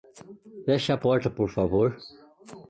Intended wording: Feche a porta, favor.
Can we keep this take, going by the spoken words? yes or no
no